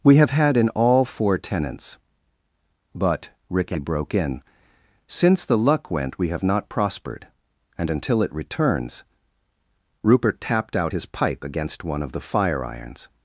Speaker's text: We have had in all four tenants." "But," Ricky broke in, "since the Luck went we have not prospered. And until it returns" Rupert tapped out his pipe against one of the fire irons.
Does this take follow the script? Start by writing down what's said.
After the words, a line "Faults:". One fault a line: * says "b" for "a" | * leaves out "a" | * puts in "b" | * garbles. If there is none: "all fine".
We have had in all four tenants." "But," Ricky broke in, "since the Luck went we have not prospered. And until it returns" Rupert tapped out his pipe against one of the fire irons.
Faults:
all fine